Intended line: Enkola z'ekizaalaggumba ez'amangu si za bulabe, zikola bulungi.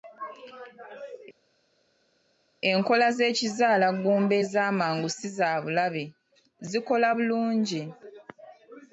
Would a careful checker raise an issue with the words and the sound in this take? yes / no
no